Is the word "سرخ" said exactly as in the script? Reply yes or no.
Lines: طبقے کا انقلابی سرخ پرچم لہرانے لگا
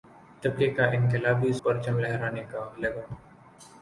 no